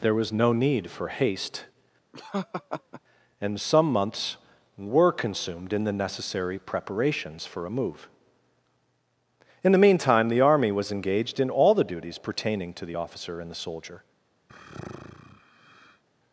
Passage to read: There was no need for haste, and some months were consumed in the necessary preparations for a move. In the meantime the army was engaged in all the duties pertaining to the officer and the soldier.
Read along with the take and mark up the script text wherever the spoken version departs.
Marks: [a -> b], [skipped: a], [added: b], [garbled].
There was no need for haste, and some months were consumed in the necessary preparations for a move. In the meantime the army was engaged in all the duties pertaining to the officer and the soldier.